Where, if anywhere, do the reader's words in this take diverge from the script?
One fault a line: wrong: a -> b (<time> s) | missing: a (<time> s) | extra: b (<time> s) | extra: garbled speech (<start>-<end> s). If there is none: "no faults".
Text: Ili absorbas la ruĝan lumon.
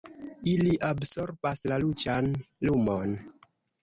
no faults